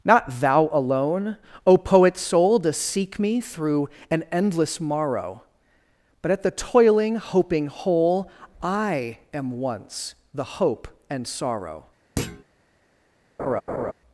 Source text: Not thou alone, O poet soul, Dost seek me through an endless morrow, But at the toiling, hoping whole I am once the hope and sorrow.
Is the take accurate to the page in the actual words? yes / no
yes